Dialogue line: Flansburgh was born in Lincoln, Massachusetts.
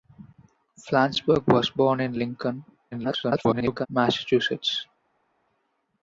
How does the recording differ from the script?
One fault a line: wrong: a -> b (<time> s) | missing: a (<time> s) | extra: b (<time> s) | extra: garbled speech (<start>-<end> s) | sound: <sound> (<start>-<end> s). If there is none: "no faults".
extra: garbled speech (2.9-3.9 s)